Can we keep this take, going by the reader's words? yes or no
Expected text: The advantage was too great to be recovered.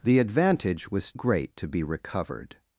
no